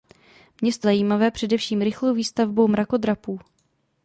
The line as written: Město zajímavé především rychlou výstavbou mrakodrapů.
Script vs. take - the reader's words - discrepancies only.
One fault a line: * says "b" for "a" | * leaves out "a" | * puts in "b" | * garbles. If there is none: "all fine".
all fine